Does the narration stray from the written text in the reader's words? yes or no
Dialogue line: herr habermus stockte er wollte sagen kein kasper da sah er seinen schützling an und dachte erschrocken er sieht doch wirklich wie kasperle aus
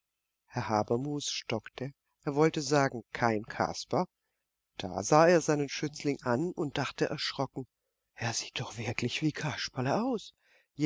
no